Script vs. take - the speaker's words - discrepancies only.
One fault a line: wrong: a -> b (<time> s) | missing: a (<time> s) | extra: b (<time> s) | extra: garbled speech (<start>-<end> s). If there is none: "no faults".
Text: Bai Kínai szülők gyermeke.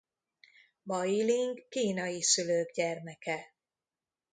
extra: Ling (1.2 s)